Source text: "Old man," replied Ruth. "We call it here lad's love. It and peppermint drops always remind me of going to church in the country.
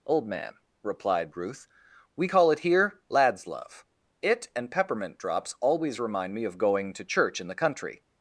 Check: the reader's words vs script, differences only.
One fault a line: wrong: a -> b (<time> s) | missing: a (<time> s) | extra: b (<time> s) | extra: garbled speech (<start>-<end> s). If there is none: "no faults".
no faults